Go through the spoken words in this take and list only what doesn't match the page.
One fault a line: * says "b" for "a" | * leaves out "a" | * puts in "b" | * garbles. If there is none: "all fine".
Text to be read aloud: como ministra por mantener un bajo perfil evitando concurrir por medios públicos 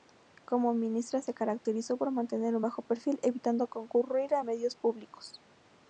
* puts in "se caracterizó"
* says "a" for "por"